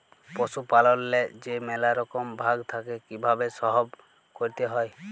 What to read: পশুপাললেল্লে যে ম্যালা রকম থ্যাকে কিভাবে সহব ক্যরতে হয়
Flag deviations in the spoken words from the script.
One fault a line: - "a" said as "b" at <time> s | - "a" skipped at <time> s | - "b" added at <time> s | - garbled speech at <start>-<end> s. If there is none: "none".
- "ভাগ" added at 2.4 s